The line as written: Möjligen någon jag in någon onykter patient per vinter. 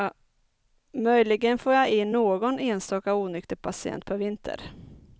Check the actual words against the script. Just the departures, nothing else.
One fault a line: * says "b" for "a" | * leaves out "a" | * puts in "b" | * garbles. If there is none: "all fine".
* says "får" for "någon"
* puts in "enstaka"